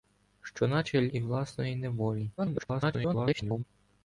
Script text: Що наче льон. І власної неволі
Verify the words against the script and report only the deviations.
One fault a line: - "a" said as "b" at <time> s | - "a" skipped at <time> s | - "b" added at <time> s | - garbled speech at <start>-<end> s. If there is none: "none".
- "льон" skipped at 1.1 s
- garbled speech at 2.4-3.6 s